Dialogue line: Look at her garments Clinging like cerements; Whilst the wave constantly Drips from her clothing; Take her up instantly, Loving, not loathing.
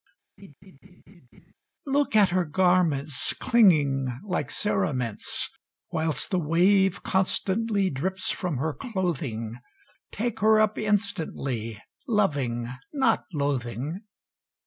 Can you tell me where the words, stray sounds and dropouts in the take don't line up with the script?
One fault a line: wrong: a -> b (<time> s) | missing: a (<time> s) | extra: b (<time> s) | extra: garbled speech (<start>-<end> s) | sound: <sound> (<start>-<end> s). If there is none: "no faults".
sound: laugh (0.4-1.5 s)